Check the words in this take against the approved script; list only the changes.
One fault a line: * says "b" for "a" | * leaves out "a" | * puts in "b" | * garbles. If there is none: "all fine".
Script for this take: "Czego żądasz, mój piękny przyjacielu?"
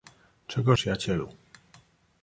* leaves out "żądasz mój piękny"